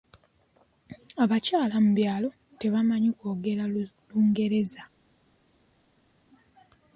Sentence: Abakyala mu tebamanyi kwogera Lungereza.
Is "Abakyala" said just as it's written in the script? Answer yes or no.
yes